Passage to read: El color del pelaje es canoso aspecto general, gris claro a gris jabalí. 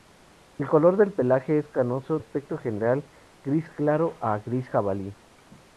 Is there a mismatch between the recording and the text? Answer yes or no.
no